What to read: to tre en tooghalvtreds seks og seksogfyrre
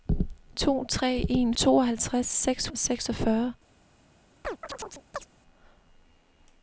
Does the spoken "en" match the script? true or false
true